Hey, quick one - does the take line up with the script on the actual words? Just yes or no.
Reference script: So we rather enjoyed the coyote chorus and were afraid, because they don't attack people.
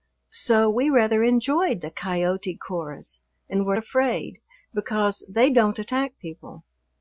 yes